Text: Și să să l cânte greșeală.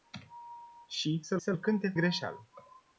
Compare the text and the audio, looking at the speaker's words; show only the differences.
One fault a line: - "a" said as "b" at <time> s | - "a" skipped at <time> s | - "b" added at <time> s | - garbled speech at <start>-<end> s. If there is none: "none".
none